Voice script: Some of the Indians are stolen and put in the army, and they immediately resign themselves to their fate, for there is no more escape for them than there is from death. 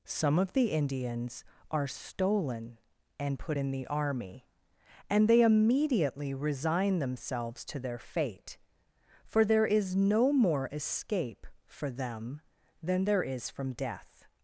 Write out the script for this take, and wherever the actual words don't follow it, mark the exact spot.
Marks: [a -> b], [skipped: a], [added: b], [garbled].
Some of the Indians are stolen and put in the army, and they immediately resign themselves to their fate, for there is no more escape for them than there is from death.